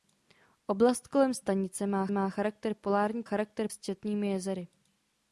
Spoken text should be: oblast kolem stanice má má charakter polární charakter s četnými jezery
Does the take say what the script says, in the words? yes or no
yes